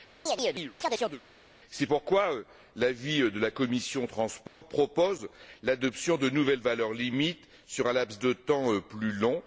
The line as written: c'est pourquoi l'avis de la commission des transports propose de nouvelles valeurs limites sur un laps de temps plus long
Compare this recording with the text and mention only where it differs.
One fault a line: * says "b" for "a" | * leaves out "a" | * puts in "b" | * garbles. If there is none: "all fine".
* puts in "l'adoption"